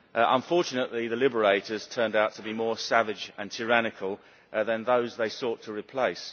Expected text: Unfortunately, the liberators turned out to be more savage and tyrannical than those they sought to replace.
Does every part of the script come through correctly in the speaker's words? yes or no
yes